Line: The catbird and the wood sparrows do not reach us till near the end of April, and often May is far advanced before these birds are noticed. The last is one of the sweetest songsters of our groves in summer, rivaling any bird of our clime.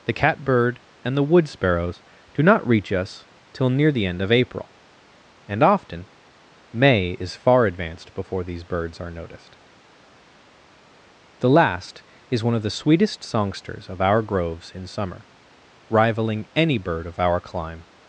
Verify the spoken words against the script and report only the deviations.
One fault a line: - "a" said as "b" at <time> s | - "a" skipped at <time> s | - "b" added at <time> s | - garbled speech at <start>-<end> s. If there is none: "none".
none